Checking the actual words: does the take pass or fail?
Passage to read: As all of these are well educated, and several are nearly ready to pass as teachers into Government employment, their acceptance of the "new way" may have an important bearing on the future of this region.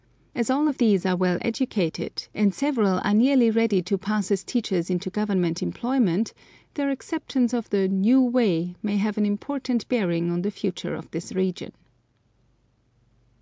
pass